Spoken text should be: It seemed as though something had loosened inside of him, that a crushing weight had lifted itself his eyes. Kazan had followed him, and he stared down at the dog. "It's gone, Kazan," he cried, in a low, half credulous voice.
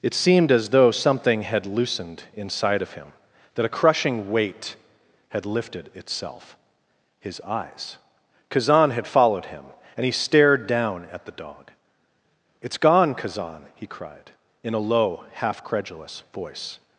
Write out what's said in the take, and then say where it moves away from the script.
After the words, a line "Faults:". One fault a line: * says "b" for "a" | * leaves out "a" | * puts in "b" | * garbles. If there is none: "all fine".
It seemed as though something had loosened inside of him, that a crushing weight had lifted itself his eyes. Kazan had followed him, and he stared down at the dog. "It's gone, Kazan," he cried, in a low, half credulous voice.
Faults:
all fine